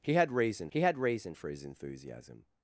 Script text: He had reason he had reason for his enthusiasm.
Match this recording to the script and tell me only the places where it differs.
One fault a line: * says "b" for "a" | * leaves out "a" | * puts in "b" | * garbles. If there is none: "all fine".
all fine